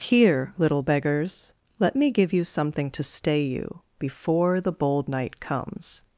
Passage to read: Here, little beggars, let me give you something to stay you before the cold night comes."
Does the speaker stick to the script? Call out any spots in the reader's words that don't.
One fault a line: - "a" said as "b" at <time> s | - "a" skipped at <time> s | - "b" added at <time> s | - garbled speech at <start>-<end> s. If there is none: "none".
- "cold" said as "bold" at 4.7 s